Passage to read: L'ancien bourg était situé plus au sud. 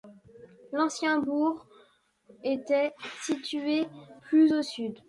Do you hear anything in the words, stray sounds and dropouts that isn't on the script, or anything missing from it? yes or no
no